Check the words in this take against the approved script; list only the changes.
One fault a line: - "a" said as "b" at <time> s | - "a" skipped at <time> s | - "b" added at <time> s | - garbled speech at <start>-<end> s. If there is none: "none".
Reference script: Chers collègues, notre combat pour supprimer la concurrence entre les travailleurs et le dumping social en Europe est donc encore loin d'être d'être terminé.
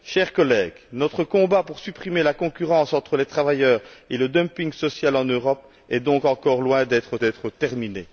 none